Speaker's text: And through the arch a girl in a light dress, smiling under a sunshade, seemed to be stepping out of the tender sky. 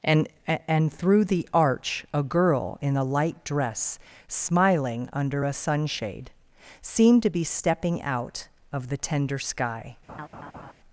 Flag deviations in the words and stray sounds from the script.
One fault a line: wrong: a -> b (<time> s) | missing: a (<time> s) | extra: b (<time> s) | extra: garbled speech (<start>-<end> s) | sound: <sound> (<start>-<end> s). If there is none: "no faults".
extra: and (0.7 s)
sound: laugh (10.1-10.7 s)